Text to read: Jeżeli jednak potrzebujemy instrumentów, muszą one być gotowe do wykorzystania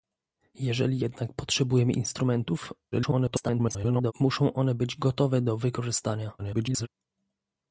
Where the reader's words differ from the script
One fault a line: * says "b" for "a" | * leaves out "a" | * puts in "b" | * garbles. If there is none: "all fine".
* garbles
* garbles